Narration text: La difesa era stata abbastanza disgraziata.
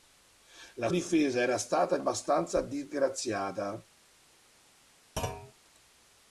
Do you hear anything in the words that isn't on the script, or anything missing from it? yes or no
no